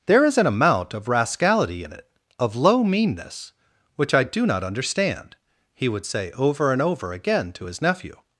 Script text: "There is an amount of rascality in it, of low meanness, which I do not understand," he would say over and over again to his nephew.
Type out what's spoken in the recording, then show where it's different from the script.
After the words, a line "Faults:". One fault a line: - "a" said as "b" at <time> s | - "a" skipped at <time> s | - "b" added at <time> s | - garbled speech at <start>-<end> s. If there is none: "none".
"There is an amount of rascality in it, of low meanness, which I do not understand," he would say over and over again to his nephew.
Faults:
none